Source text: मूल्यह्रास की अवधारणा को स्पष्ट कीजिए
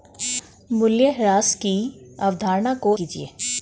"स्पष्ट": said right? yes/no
no